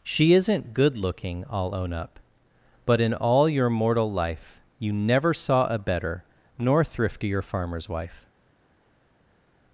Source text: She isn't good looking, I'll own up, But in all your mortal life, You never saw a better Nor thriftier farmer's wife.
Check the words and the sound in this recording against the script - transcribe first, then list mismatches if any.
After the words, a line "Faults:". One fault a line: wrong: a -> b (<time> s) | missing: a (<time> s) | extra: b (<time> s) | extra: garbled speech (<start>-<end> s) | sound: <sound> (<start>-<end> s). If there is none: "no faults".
She isn't good looking, I'll own up, But in all your mortal life, You never saw a better Nor thriftier farmer's wife.
Faults:
no faults